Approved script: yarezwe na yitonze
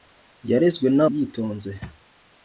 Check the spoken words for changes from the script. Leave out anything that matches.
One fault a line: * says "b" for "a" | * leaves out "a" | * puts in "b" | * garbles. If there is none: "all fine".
all fine